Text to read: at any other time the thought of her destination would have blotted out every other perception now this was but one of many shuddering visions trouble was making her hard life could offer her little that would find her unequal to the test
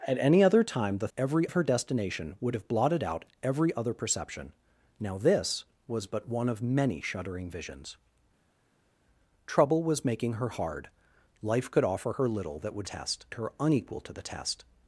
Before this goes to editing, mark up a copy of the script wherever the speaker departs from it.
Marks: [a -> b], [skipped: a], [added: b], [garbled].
at any other time the [thought -> every] of her destination would have blotted out every other perception now this was but one of many shuddering visions trouble was making her hard life could offer her little that would [find -> test] her unequal to the test